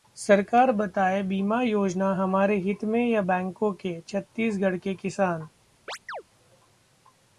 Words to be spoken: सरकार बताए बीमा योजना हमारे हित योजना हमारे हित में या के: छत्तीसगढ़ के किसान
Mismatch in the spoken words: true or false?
true